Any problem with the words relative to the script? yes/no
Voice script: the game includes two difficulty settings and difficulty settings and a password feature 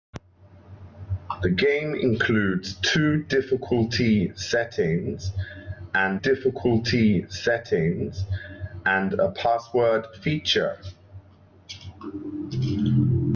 no